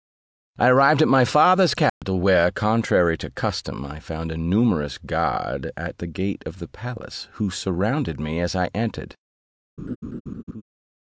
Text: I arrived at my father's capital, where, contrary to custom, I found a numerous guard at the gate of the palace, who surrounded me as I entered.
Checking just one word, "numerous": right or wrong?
right